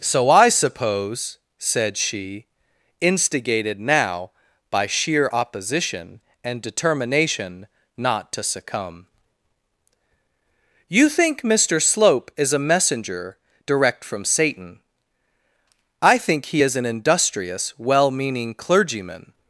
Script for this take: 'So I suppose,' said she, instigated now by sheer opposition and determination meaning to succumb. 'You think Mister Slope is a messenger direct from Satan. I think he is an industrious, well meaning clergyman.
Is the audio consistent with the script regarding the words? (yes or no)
no